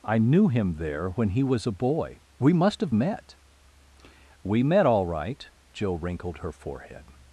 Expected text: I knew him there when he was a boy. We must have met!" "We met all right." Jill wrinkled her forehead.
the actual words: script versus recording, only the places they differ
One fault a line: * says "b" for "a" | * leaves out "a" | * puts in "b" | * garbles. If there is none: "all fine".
all fine